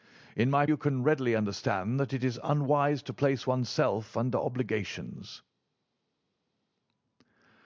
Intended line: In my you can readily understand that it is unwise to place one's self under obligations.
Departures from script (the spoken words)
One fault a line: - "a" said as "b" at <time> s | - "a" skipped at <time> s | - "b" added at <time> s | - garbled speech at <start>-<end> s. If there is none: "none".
none